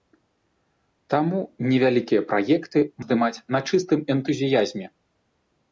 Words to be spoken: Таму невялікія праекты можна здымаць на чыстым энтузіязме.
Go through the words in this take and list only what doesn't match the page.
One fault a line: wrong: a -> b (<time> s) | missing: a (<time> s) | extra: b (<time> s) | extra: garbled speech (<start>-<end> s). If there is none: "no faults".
missing: можна (2.8 s)